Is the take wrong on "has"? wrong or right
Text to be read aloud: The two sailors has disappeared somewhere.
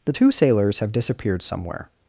wrong